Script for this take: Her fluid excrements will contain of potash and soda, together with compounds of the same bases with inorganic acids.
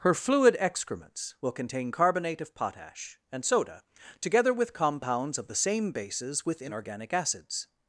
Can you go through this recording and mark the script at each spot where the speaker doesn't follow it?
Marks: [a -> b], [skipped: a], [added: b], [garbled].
Her fluid excrements will contain [added: carbonate] of potash and soda, together with compounds of the same bases with inorganic acids.